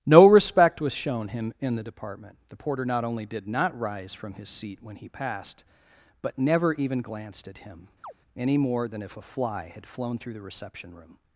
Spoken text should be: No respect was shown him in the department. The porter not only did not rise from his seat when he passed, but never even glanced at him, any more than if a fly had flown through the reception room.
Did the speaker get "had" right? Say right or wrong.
right